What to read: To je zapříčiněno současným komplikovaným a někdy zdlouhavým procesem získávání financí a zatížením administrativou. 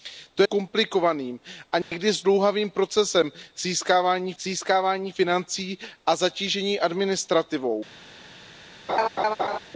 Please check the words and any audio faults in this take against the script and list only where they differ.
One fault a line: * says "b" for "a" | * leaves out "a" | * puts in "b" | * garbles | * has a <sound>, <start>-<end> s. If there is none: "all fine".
* leaves out "je zapříčiněno současným"
* has a dropout, 1.8-1.9 s
* puts in "získávání"
* has a laugh, 8.9-9.6 s